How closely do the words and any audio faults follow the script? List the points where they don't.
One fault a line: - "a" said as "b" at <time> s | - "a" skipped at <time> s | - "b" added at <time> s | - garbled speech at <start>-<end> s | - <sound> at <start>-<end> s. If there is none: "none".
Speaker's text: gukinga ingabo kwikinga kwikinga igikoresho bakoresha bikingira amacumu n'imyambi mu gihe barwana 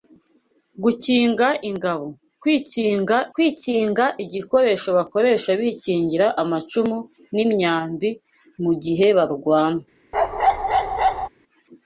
- bark at 10.1-11.3 s